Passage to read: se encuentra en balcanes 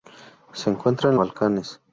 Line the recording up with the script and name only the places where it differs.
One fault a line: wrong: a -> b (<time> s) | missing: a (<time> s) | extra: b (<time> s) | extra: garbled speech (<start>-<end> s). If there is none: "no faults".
no faults